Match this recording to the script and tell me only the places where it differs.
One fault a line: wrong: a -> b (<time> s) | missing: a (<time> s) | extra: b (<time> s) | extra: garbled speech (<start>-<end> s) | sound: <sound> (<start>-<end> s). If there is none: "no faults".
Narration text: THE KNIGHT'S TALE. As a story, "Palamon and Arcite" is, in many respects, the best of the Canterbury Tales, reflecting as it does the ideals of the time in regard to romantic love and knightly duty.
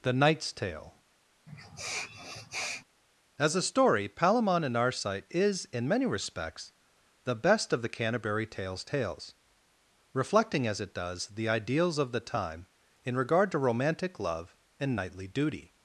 sound: sniff (1.5-2.8 s)
extra: Tales (8.8 s)